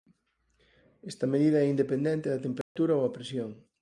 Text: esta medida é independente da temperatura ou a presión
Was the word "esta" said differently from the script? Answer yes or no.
no